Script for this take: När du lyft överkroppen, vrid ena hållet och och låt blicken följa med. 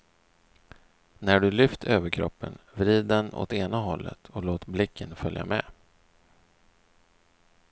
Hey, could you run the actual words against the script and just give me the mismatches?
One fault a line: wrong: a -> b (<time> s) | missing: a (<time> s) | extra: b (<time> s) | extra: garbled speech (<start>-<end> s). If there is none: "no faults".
extra: den åt (3.0 s)
missing: och (4.4 s)